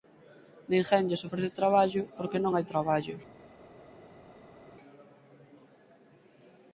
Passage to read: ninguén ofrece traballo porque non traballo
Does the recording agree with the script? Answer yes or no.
no